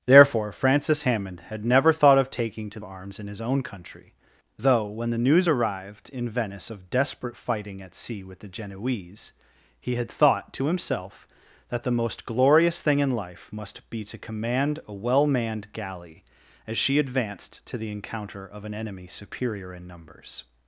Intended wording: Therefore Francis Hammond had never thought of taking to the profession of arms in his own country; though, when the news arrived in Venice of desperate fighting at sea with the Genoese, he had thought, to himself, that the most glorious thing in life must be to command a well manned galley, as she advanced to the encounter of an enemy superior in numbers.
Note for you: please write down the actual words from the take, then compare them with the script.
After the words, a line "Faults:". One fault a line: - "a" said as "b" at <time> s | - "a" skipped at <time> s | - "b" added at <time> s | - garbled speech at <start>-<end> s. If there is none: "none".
Therefore Francis Hammond had never thought of taking to arms in his own country; though, when the news arrived in Venice of desperate fighting at sea with the Genoese, he had thought, to himself, that the most glorious thing in life must be to command a well manned galley, as she advanced to the encounter of an enemy superior in numbers.
Faults:
- "the profession of" skipped at 2.8 s